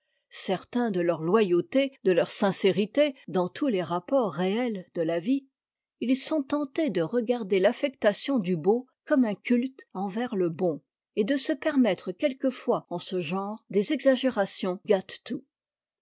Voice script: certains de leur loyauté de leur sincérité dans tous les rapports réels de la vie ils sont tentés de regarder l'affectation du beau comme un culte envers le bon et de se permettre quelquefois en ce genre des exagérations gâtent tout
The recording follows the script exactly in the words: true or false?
true